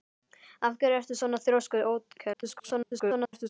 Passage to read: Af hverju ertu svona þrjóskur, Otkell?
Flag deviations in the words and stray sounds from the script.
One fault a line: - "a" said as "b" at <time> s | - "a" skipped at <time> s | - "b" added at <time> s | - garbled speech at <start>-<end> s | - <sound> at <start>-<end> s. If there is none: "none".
- garbled speech at 2.3-3.5 s